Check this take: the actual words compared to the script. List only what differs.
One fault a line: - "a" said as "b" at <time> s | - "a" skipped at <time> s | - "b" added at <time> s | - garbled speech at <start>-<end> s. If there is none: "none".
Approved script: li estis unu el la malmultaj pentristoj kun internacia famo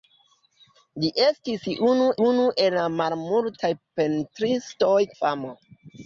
- "unu" added at 2.3 s
- "kun internacia" skipped at 5.0 s